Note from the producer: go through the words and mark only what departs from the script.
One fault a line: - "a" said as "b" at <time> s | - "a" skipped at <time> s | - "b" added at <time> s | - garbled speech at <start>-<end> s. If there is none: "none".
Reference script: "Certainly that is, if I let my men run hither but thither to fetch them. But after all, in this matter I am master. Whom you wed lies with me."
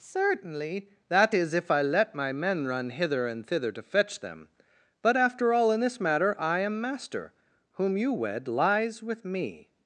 - "but" said as "and" at 3.3 s